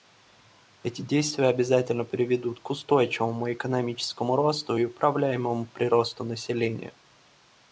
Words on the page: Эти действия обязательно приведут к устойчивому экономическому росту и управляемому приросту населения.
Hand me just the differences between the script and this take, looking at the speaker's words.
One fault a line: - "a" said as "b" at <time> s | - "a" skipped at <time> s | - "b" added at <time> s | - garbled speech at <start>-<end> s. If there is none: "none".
none